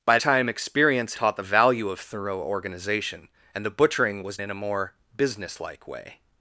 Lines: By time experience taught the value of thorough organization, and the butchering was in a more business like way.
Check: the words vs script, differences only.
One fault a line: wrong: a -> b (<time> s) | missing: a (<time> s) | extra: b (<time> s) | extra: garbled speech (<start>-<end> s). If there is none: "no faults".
no faults